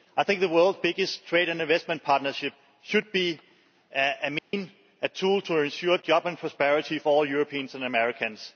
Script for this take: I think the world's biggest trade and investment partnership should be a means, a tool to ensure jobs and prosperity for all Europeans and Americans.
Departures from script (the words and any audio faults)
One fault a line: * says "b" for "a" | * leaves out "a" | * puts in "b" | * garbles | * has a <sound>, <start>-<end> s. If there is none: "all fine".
* has a dropout, 4.4-4.5 s